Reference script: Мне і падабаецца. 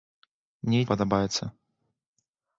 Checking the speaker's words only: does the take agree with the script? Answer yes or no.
yes